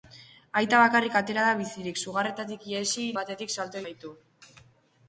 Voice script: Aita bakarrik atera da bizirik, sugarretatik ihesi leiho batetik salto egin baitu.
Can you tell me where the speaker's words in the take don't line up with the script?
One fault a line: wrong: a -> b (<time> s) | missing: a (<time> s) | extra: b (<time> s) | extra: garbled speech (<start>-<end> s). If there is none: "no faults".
missing: leiho (3.0 s)
missing: egin (3.8 s)